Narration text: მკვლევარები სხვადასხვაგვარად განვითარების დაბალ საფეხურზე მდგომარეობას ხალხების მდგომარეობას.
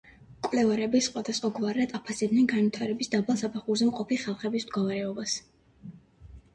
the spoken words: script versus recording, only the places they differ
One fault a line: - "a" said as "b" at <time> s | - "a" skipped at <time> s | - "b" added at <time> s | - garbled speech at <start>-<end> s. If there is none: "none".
- "აფასებდნენ" added at 2.0 s
- "მდგომარეობას" said as "მყოფი" at 3.9 s